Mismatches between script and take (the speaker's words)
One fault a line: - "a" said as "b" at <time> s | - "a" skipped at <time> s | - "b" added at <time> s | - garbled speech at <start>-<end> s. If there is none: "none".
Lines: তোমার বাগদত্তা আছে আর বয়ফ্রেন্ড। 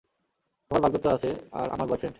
- "আমার" added at 1.7 s